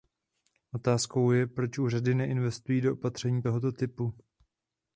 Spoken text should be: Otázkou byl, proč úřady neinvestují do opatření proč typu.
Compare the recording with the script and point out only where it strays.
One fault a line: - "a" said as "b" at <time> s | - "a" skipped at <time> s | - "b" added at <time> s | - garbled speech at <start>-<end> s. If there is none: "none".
- "byl" said as "je" at 1.3 s
- "proč" said as "tohoto" at 3.4 s